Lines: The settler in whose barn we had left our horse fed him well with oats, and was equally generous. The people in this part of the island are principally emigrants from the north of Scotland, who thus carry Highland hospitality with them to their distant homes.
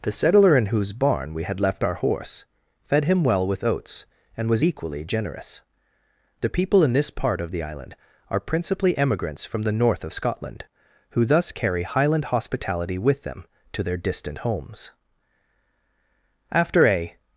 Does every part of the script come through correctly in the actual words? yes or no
no